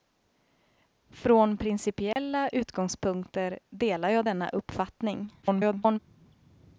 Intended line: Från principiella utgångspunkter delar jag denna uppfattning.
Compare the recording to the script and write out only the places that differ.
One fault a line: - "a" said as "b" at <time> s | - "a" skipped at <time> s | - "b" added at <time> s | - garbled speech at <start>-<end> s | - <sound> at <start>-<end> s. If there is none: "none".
- dropout at 2.1-2.2 s
- garbled speech at 5.4-6.0 s